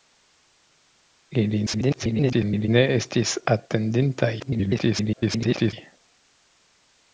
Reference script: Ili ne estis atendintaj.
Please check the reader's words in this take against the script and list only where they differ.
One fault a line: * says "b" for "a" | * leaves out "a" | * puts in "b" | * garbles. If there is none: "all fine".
* garbles
* garbles